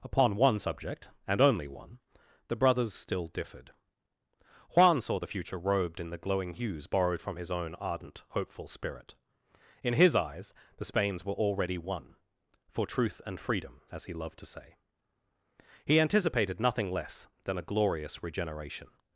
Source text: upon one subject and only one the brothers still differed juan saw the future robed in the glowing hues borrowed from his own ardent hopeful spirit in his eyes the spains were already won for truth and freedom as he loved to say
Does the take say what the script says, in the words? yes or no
no